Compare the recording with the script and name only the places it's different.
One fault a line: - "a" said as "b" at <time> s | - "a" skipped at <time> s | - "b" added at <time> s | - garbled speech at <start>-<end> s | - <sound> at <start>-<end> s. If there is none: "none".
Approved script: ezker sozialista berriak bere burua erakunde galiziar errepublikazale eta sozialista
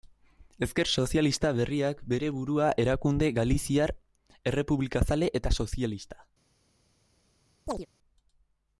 - chirp at 7.7-7.9 s